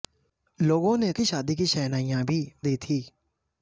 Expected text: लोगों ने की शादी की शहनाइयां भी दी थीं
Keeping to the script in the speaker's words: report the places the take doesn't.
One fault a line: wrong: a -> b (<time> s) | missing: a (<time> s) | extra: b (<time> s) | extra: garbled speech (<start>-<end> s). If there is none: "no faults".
no faults